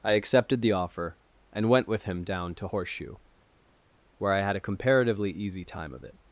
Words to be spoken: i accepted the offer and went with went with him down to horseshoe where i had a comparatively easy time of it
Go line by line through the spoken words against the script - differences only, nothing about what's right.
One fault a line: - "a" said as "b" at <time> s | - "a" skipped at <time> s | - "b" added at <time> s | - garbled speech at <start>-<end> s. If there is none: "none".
- "went with" skipped at 2.0 s